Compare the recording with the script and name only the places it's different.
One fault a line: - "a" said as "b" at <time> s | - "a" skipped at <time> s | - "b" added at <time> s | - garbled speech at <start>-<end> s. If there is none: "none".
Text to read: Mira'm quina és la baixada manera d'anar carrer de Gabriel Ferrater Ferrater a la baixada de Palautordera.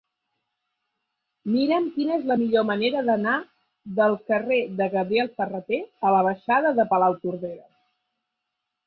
- "baixada" said as "millor" at 2.4 s
- "del" added at 4.0 s
- "Ferrater" skipped at 5.8 s